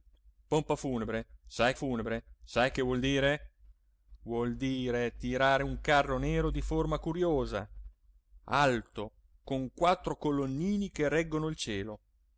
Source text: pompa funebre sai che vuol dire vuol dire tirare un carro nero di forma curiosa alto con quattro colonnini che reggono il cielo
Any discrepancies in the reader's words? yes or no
yes